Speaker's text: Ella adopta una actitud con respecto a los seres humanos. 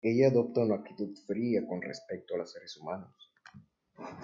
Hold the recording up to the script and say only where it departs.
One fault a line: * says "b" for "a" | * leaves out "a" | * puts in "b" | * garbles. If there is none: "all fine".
* puts in "fría"